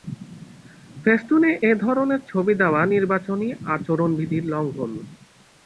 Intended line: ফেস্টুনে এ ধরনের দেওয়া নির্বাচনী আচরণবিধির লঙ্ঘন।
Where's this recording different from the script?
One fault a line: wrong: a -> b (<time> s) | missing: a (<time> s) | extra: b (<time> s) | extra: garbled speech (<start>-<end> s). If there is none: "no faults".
extra: ছবি (2.3 s)